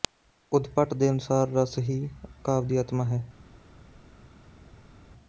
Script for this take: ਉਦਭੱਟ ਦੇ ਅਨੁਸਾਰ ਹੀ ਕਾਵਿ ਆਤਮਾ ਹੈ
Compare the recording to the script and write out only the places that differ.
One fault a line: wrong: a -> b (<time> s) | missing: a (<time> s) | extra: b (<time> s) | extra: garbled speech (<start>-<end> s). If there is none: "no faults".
extra: ਰਸ (1.5 s)
extra: ਦੀ (2.7 s)